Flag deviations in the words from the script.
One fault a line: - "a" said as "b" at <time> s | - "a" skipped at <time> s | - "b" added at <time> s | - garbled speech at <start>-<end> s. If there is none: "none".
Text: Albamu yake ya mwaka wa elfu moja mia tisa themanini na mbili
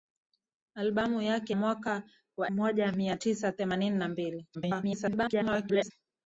- "ya" skipped at 1.5 s
- "elfu" skipped at 2.5 s
- garbled speech at 4.5-5.9 s